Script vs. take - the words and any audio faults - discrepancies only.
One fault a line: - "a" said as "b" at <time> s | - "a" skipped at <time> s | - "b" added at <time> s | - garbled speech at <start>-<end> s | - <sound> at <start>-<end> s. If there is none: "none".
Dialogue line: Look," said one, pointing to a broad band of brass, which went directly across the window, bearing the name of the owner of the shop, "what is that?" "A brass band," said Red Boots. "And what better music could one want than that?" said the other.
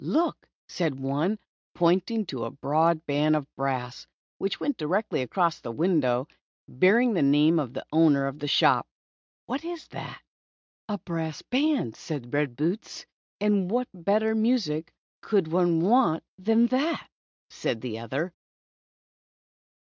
none